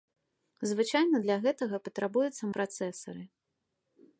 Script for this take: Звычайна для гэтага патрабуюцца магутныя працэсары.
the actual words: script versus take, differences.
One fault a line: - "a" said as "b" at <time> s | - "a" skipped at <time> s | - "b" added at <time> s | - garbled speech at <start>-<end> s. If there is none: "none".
- "магутныя" skipped at 2.4 s